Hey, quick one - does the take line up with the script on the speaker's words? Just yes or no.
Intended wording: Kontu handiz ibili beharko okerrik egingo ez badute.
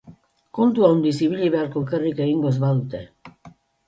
yes